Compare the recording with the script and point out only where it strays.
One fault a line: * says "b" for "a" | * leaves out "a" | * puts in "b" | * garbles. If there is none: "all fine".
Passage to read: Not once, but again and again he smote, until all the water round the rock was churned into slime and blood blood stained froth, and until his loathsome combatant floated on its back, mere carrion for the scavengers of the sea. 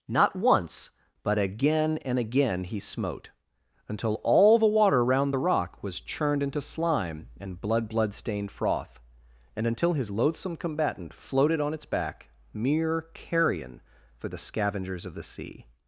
all fine